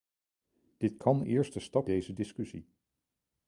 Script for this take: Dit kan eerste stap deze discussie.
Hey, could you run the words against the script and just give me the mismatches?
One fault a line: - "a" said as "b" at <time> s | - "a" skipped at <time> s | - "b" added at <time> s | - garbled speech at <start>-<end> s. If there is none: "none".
none